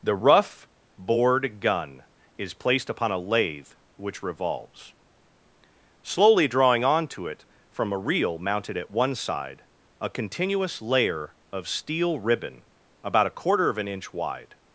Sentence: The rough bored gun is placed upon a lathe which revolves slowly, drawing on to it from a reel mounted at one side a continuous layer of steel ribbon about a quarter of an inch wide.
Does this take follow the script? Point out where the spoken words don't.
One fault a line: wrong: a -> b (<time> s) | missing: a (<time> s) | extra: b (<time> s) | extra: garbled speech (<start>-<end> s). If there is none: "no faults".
no faults